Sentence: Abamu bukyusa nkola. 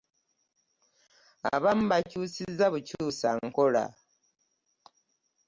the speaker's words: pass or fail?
fail